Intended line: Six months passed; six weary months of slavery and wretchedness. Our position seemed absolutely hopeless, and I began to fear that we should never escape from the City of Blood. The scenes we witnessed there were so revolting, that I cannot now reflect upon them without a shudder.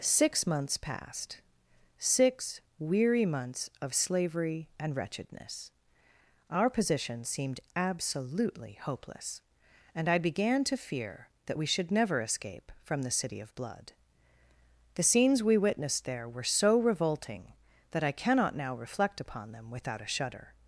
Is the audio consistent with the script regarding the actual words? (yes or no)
yes